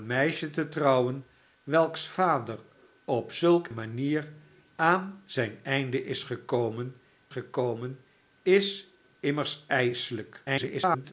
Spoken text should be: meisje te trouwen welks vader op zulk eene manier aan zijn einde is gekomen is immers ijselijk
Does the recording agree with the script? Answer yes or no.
no